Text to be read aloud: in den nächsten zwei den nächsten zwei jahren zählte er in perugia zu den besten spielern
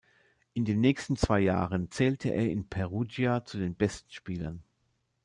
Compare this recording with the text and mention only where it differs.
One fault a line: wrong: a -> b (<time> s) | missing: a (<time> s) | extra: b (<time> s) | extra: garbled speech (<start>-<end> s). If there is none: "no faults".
missing: den nächsten zwei (1.4 s)